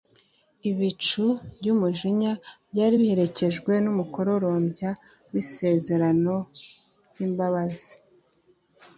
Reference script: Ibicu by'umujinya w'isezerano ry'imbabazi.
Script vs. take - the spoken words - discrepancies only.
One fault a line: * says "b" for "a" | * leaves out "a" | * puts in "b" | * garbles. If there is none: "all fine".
* puts in "byari biherekejwe n'umukororombya"